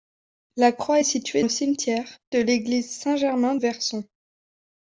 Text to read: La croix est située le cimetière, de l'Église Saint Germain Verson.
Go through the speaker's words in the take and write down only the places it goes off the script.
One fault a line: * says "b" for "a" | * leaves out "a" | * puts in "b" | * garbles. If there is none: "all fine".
all fine